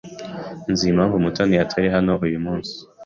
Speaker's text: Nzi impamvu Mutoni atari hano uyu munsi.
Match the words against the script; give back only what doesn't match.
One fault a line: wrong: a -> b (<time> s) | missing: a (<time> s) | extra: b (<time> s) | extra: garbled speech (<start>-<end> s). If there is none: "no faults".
no faults